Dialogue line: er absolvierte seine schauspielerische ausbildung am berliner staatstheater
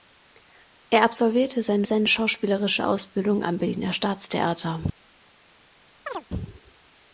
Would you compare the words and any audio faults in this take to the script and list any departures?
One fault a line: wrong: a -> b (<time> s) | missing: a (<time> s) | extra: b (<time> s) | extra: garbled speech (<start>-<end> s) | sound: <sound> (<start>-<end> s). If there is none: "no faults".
extra: seine (1.8 s)
sound: chirp (6.1-6.3 s)